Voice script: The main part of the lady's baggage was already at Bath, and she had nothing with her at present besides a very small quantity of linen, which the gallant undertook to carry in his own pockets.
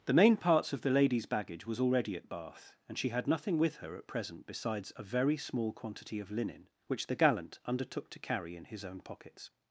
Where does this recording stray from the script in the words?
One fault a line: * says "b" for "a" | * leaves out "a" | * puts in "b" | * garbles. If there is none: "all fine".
* says "parts" for "part"